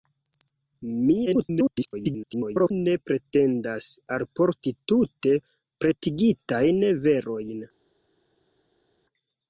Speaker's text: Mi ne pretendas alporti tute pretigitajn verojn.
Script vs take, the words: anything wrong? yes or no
yes